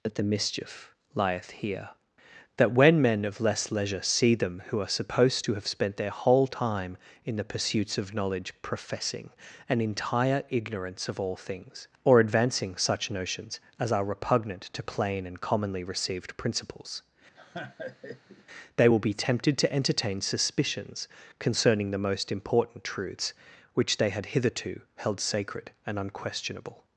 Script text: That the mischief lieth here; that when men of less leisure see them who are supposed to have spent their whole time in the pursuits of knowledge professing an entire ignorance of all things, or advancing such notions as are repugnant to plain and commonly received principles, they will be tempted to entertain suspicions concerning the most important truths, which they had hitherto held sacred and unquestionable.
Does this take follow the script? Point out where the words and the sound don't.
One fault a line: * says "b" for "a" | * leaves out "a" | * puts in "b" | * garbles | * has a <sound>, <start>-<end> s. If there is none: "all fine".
* has a laugh, 17.4-18.5 s